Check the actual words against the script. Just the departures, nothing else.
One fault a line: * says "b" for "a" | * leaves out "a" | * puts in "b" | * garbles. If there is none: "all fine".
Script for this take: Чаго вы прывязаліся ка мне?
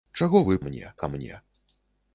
* says "мне" for "прывязаліся"